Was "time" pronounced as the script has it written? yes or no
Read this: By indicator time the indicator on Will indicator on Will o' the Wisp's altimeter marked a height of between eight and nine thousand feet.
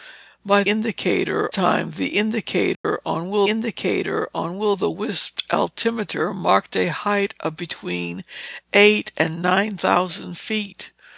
yes